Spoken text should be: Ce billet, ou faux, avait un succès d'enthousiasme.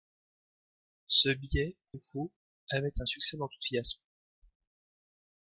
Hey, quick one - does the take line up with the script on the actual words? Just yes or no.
yes